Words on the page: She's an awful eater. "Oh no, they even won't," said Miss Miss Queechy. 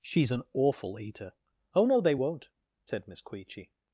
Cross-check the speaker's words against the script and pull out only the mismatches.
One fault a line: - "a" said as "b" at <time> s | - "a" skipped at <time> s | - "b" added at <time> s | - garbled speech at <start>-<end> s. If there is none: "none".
- "even" skipped at 2.1 s
- "Miss" skipped at 3.2 s